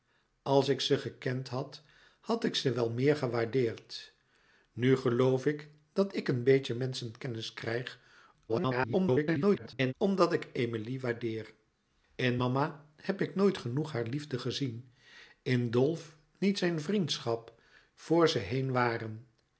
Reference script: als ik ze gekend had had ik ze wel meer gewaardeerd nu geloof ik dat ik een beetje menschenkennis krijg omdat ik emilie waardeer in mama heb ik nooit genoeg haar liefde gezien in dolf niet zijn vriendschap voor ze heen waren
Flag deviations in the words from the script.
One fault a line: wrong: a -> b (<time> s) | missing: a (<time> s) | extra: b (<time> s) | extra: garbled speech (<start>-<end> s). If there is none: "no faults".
extra: garbled speech (8.5-9.9 s)